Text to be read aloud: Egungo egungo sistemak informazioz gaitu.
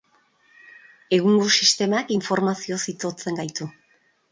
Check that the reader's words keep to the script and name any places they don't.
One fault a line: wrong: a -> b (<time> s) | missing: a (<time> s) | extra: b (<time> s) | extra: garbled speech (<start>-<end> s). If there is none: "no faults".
missing: egungo (1.5 s)
extra: itotzen (3.0 s)